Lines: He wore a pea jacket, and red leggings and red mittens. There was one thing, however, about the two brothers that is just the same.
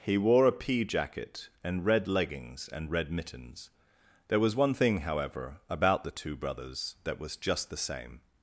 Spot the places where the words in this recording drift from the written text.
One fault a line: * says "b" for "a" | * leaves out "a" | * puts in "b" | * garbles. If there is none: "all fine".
* says "was" for "is"